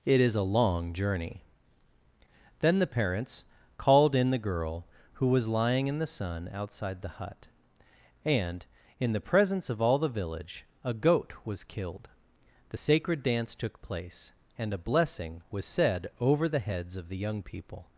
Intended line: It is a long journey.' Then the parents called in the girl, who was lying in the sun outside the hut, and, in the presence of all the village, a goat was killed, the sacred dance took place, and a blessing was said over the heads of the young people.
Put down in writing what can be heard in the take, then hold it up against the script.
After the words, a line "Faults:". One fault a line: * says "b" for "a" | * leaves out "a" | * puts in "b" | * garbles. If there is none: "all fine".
It is a long journey.' Then the parents called in the girl, who was lying in the sun outside the hut, and, in the presence of all the village, a goat was killed, the sacred dance took place, and a blessing was said over the heads of the young people.
Faults:
all fine